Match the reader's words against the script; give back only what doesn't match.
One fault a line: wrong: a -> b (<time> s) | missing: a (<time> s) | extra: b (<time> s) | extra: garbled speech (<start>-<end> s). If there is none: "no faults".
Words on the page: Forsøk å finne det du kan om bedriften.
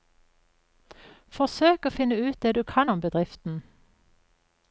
extra: ut (2.2 s)